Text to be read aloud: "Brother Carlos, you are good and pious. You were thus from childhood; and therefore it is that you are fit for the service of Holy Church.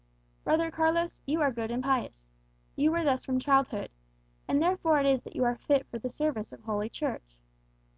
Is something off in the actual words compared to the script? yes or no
no